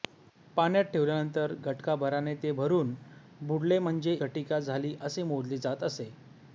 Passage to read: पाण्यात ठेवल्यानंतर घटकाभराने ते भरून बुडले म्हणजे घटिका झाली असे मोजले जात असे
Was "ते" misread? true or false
false